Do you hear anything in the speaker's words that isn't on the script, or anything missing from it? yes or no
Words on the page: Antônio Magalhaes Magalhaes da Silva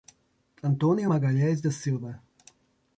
yes